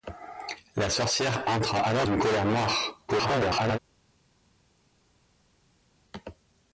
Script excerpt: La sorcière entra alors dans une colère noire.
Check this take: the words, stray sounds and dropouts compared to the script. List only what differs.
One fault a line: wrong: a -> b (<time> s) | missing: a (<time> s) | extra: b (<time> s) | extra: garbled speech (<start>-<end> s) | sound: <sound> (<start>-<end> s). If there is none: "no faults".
missing: dans (2.1 s)
extra: garbled speech (3.1-3.8 s)